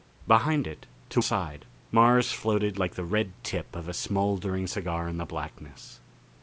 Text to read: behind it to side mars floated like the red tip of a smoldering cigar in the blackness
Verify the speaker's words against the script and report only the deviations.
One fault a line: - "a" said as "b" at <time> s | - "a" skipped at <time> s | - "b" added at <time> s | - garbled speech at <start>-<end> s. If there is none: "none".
none